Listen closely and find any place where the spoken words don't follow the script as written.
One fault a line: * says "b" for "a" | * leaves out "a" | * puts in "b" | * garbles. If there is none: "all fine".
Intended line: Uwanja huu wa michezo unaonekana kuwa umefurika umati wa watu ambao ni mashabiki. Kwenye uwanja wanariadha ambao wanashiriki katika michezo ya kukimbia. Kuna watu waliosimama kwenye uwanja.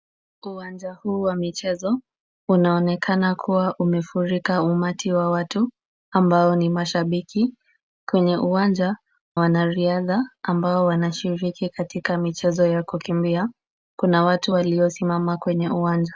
all fine